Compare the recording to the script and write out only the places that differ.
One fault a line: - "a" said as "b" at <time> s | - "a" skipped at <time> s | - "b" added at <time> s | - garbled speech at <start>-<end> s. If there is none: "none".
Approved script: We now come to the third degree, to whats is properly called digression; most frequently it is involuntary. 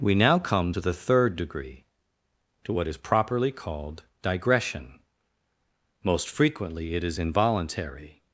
- "whats" said as "what" at 2.7 s